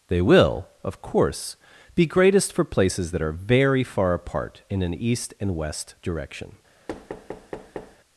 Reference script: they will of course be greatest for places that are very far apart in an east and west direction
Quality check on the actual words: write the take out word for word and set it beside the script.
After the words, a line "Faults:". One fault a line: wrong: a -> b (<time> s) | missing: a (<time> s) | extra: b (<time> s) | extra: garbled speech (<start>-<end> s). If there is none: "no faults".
they will of course be greatest for places that are very far apart in an east and west direction
Faults:
no faults